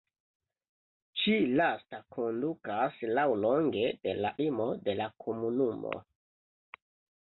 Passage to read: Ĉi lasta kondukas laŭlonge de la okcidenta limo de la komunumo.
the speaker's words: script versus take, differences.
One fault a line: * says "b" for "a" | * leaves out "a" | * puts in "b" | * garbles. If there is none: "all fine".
* leaves out "okcidenta"